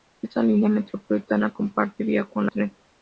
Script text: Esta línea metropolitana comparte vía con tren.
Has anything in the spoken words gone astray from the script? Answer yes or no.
no